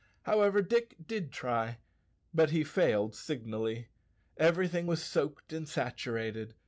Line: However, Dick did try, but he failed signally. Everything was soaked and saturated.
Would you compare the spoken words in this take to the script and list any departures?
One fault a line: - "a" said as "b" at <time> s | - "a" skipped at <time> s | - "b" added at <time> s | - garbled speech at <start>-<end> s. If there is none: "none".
none